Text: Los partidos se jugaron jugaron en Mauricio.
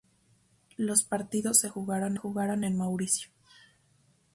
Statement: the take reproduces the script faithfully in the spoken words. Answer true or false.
true